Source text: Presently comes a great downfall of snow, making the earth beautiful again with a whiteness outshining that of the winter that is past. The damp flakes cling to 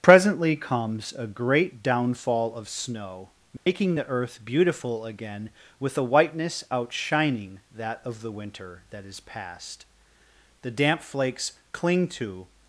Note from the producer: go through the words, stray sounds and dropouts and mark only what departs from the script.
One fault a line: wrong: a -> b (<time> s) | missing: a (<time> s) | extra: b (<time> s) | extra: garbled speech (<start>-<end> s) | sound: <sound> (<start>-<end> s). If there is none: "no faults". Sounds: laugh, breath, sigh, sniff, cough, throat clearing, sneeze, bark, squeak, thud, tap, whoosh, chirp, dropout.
sound: dropout (3.6-3.7 s)